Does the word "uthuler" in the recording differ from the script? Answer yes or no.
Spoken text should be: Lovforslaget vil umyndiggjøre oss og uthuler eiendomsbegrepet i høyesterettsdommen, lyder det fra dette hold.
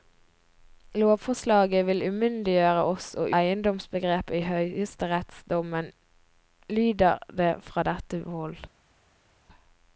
yes